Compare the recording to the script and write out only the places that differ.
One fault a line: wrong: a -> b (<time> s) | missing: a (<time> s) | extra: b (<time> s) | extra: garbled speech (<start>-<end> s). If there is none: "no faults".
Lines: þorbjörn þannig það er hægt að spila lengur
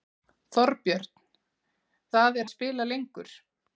missing: þannig (1.1 s)
missing: hægt (2.5 s)